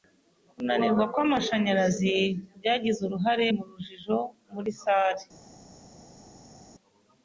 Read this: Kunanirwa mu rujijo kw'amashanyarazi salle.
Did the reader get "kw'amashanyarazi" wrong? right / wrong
wrong